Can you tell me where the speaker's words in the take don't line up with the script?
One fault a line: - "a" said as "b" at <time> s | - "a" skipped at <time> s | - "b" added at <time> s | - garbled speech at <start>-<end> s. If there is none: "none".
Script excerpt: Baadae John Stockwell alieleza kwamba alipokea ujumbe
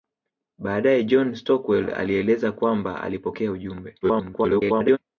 - garbled speech at 4.0-5.0 s